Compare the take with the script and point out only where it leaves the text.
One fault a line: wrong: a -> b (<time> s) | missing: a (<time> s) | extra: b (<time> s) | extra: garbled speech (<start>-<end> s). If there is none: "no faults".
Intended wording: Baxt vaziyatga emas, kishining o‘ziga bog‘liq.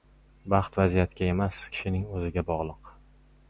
no faults